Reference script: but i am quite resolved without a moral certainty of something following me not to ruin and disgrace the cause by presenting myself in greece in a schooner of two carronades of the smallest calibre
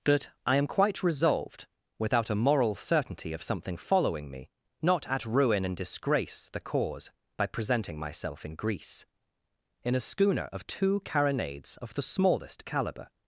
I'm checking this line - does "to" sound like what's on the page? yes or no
no